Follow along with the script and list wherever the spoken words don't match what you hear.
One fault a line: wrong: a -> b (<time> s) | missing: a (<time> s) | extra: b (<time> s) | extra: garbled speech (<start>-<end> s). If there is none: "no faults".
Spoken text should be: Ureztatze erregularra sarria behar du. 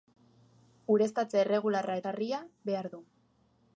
no faults